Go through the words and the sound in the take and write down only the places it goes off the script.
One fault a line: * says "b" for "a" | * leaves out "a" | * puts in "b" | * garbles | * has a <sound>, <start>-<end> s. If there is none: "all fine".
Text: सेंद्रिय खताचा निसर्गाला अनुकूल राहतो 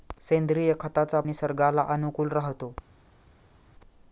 all fine